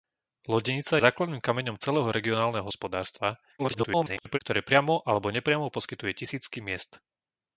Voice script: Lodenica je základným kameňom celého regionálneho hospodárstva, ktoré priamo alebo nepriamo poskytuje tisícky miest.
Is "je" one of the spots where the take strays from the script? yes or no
yes